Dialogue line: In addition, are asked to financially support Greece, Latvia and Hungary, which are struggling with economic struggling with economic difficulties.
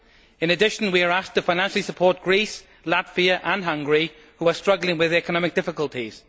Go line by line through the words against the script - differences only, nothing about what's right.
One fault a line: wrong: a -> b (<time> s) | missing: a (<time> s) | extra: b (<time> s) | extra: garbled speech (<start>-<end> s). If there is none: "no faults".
extra: we (0.9 s)
missing: struggling with economic (5.5 s)